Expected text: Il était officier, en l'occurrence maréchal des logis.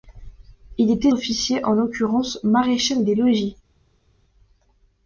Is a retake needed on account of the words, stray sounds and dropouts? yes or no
no